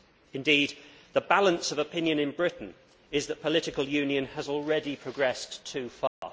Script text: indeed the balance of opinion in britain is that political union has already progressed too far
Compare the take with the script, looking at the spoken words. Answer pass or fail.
pass